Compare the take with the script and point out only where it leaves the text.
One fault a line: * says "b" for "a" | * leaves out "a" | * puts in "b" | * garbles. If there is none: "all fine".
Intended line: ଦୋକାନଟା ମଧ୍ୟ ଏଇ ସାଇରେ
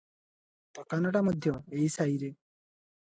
all fine